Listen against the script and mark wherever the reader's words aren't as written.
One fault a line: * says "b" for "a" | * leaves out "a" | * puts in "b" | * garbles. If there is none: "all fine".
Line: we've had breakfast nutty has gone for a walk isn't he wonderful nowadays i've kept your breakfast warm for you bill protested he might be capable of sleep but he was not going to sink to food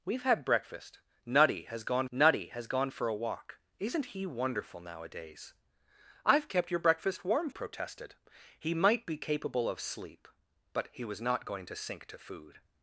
* puts in "nutty has gone"
* leaves out "for you bill"